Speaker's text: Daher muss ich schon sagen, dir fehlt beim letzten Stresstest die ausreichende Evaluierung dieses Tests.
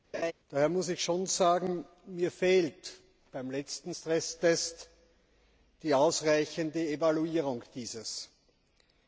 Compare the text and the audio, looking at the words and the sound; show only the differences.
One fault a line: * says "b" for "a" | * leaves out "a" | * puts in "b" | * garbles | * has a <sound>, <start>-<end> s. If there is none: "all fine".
* has a laugh, 0.1-0.3 s
* says "mir" for "dir"